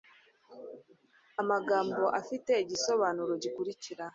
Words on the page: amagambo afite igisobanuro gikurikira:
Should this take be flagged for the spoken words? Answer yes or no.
no